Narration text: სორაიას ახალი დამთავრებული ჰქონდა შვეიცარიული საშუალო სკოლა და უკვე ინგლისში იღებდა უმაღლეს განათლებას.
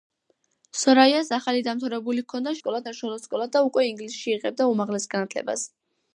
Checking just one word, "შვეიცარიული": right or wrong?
wrong